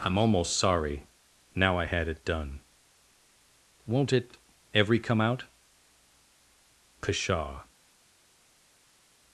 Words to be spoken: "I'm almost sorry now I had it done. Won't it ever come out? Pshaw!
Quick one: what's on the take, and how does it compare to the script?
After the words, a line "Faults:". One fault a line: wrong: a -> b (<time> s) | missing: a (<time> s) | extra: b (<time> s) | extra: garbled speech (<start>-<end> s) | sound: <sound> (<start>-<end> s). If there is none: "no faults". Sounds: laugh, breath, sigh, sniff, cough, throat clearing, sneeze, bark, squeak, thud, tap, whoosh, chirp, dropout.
"I'm almost sorry now I had it done. Won't it every come out? Pshaw!
Faults:
wrong: ever -> every (4.7 s)